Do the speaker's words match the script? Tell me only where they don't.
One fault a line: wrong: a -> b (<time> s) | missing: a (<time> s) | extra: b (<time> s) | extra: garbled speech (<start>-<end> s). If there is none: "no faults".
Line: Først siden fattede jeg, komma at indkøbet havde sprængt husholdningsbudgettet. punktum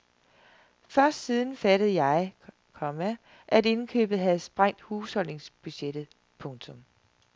no faults